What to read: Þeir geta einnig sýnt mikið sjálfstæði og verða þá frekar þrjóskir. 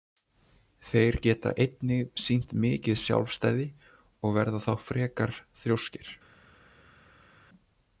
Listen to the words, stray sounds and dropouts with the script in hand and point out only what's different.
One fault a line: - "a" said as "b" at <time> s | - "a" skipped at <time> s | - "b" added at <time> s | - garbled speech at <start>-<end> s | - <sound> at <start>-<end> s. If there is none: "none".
none